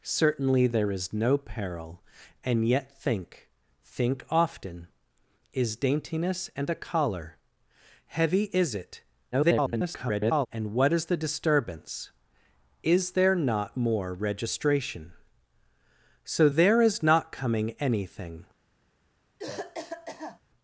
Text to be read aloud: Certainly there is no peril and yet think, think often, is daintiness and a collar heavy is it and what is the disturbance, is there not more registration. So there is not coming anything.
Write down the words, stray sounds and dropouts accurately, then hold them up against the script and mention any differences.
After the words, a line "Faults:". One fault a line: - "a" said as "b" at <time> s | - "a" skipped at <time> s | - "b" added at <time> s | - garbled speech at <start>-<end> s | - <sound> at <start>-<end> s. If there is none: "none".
Certainly there is no peril and yet think, think often, is daintiness and a collar heavy is it [garbled] and what is the disturbance, is there not more registration. So there is not coming anything.
Faults:
- garbled speech at 9.3-10.5 s
- cough at 19.4-20.4 s